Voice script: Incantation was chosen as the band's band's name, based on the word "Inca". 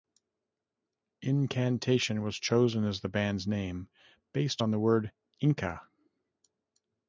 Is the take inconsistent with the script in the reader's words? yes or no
yes